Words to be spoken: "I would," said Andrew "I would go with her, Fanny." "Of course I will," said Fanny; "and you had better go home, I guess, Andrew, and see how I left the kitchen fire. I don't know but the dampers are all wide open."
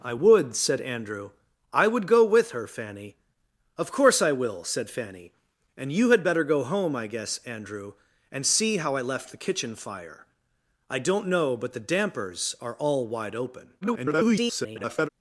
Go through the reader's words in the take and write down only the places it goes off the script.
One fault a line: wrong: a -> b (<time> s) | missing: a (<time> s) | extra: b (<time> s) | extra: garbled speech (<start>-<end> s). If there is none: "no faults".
extra: garbled speech (13.8-15.1 s)